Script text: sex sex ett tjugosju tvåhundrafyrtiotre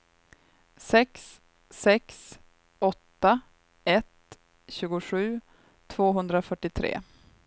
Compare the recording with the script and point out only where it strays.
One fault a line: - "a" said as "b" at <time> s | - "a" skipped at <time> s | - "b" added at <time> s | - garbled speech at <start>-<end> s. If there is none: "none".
- "åtta" added at 2.8 s